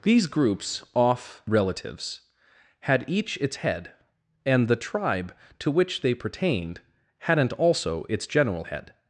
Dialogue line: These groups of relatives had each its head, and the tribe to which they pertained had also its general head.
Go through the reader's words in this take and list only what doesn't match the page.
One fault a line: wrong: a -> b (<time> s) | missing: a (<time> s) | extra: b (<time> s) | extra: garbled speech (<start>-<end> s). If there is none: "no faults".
wrong: of -> off (0.9 s)
wrong: had -> hadn't (7.2 s)